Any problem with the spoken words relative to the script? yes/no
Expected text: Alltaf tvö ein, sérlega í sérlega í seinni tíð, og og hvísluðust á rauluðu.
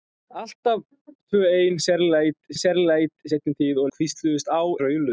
no